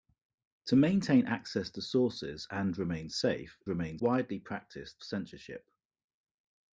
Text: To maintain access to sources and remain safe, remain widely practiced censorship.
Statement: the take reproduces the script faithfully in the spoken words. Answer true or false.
true